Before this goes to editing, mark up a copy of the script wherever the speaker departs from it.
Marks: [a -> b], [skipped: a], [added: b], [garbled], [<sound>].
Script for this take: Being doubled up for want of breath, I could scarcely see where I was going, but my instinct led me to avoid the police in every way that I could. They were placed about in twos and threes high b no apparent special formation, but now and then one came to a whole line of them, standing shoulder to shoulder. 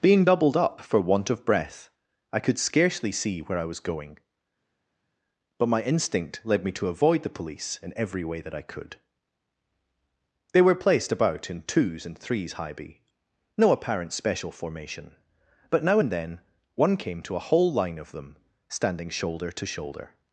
Being doubled up for want of breath, I could scarcely see where I was going, but my instinct led me to avoid the police in every way that I could. They were placed about in twos and threes high b no apparent special formation, but now and then one came to a whole line of them, standing shoulder to shoulder.